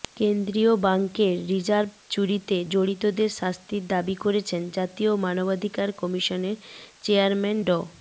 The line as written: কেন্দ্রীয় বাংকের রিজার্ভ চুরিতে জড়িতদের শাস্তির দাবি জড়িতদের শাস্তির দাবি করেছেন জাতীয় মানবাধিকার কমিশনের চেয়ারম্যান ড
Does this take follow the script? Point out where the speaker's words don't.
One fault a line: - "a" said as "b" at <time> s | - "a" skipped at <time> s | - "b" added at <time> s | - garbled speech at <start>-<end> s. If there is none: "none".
- "জড়িতদের শাস্তির দাবি" skipped at 4.2 s